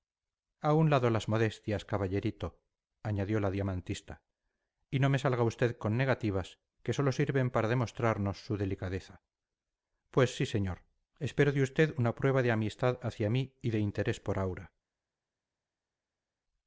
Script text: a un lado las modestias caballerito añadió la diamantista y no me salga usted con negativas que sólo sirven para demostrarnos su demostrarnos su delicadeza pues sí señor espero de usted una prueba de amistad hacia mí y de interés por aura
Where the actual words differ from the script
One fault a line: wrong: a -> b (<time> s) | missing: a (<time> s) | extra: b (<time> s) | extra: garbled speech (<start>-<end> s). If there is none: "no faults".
missing: demostrarnos su (8.6 s)